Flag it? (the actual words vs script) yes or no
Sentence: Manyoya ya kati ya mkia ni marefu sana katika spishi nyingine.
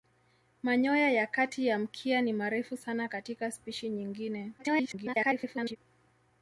yes